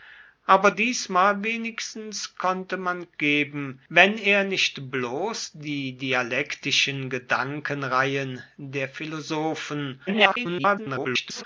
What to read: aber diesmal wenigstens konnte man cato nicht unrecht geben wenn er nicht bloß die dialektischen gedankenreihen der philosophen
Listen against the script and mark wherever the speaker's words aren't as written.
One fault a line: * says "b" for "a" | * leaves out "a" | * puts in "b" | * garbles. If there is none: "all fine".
* leaves out "cato nicht unrecht"
* garbles